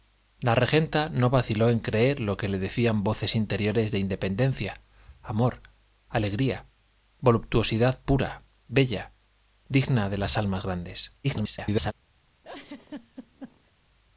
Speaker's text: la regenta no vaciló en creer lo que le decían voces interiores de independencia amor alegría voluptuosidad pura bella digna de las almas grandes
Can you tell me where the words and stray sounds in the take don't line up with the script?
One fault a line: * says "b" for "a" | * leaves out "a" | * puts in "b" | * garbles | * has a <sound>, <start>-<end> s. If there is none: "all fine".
* garbles
* has a laugh, 12.4-13.7 s